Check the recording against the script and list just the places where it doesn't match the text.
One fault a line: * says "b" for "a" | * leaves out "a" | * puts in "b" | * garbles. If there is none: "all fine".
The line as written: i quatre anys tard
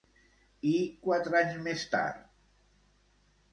* puts in "més"